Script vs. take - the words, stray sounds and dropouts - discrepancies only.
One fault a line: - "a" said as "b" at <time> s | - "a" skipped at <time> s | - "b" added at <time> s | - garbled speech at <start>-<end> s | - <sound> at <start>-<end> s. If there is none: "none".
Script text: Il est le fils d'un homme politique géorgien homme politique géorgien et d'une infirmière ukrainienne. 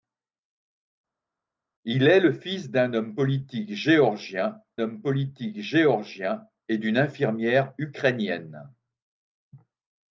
none